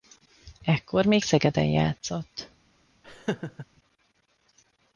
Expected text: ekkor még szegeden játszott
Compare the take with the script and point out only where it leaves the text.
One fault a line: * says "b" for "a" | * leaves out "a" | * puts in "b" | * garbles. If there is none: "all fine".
all fine